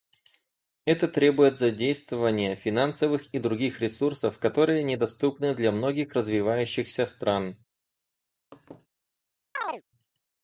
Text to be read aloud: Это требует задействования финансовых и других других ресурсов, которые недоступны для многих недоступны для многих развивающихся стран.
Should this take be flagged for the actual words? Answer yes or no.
yes